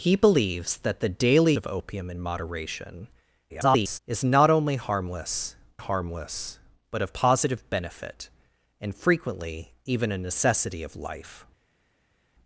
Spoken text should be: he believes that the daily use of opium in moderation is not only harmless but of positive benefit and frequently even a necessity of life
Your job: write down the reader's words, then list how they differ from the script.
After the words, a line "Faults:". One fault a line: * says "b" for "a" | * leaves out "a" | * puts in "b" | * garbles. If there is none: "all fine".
he believes that the daily of opium in moderation [garbled] is not only harmless harmless but of positive benefit and frequently even a necessity of life
Faults:
* leaves out "use"
* garbles
* puts in "harmless"